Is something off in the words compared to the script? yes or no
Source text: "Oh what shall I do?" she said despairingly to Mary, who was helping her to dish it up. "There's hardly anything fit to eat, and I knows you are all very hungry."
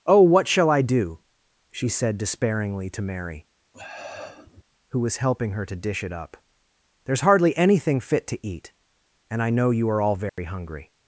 yes